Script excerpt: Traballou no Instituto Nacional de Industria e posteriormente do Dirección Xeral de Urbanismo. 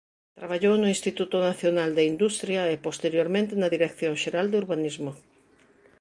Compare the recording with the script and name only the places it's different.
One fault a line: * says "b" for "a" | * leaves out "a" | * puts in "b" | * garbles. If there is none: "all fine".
* says "na" for "do"